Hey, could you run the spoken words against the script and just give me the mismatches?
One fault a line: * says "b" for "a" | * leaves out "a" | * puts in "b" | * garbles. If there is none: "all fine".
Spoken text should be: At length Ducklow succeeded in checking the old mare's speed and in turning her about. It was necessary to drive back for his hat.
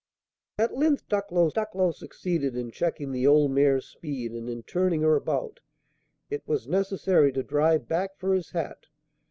* puts in "Ducklow"